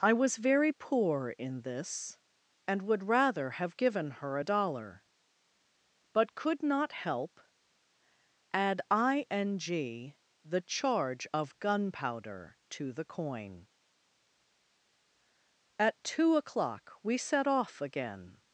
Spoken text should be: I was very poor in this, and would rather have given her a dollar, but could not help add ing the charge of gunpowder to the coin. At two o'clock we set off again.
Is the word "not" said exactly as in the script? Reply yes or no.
yes